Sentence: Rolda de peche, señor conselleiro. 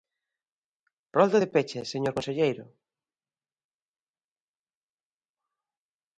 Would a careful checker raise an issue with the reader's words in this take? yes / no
no